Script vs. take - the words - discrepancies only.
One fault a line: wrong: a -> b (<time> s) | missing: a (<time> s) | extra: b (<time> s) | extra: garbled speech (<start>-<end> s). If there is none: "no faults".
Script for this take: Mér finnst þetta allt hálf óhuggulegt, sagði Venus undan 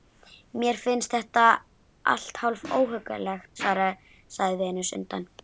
no faults